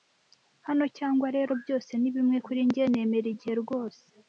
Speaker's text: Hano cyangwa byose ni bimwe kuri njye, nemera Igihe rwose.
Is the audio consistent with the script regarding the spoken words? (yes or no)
no